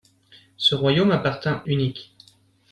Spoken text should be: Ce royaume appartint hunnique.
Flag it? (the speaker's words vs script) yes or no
no